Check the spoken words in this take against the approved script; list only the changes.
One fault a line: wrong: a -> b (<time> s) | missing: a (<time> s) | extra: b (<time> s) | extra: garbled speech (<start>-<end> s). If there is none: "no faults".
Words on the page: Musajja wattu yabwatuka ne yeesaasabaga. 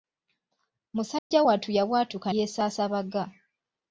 missing: ne (2.3 s)